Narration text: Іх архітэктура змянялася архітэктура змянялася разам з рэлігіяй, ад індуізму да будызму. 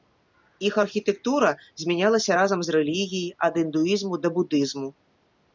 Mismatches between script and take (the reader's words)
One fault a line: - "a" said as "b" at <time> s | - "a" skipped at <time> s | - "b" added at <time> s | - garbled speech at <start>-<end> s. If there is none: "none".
- "архітэктура змянялася" skipped at 2.3 s